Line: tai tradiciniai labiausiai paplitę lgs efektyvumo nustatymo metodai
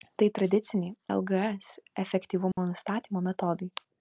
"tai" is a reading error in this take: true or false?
false